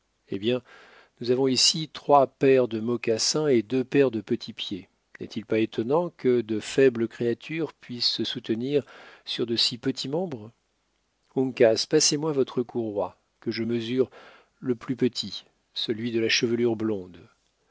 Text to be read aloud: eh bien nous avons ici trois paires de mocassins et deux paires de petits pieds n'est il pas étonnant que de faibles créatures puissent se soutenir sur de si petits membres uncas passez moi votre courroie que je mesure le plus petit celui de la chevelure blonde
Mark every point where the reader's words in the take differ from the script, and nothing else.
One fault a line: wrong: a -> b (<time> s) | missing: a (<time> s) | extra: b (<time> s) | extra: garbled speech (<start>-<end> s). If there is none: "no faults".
no faults